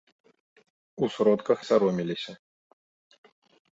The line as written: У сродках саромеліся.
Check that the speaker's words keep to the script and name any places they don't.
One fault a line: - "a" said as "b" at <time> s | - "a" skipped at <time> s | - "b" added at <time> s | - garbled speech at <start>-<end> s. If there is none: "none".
none